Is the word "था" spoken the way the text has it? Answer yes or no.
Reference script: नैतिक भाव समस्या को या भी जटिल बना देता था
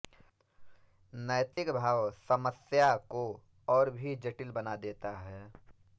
no